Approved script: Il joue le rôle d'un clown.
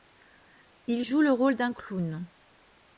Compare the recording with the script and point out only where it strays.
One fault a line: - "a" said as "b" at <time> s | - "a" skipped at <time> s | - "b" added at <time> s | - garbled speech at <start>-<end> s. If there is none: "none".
none